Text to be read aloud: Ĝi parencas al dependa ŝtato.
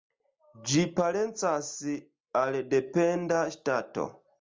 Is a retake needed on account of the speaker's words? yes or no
no